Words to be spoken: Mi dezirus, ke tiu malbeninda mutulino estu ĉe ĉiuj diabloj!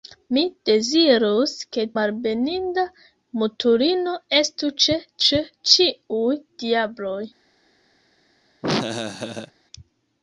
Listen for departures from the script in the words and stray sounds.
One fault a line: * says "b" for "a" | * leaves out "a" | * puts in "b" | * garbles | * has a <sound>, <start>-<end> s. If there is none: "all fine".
* leaves out "tiu"
* puts in "ĉe"
* has a laugh, 8.6-9.5 s